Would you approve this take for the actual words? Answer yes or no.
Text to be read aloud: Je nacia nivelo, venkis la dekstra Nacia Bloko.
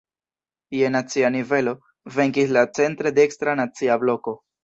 no